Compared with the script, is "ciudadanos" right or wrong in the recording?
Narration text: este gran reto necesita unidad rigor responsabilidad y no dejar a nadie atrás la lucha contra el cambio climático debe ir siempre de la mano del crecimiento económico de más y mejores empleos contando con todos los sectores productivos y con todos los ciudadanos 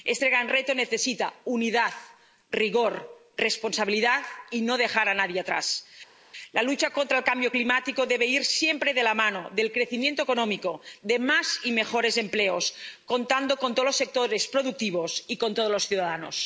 right